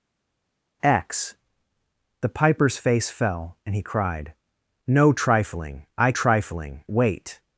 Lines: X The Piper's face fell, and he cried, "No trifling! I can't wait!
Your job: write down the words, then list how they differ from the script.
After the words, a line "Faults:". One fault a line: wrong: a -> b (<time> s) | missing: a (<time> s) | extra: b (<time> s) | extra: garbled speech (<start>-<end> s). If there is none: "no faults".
X The Piper's face fell, and he cried, "No trifling! I trifling wait!
Faults:
wrong: can't -> trifling (6.1 s)